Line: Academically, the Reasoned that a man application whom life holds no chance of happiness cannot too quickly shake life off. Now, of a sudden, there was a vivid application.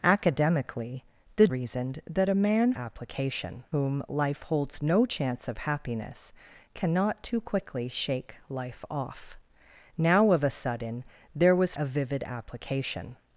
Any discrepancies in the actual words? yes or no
no